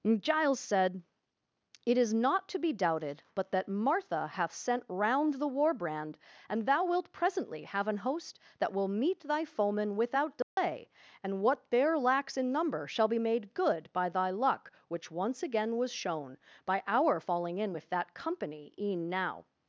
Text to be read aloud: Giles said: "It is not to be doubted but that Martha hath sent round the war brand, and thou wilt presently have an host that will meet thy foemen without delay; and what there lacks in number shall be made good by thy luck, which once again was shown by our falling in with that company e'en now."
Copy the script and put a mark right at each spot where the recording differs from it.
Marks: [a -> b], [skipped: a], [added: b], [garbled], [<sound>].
Giles said: "It is not to be doubted but that Martha hath sent round the war brand, and thou wilt presently have an host that will meet thy foemen without delay; [dropout] and what there lacks in number shall be made good by thy luck, which once again was shown by our falling in with that company e'en now."